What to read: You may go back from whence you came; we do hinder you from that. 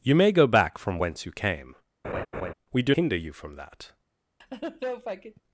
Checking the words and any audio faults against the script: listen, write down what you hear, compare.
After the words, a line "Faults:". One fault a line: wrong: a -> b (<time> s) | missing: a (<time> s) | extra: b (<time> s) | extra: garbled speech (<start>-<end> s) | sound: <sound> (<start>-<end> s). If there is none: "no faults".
You may go back from whence you came; we do hinder you from that.
Faults:
sound: laugh (2.0-2.5 s)
sound: laugh (4.4-5.4 s)